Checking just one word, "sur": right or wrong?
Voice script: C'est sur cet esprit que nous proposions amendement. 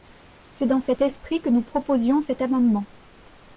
wrong